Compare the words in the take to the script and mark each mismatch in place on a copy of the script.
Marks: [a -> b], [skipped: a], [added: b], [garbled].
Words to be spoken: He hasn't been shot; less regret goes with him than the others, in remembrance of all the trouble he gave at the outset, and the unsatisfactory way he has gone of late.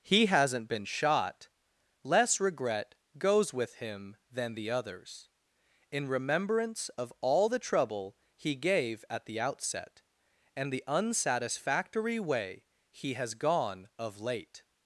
He hasn't been shot; less regret goes with him than the others, in remembrance of all the trouble he gave at the outset, and the unsatisfactory way he has gone of late.